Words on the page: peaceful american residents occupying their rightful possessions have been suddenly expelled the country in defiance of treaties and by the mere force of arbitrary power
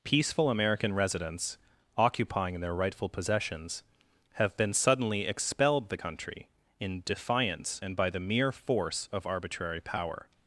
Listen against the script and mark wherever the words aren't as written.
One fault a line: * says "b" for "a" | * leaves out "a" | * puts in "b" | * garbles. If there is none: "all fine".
* leaves out "of treaties"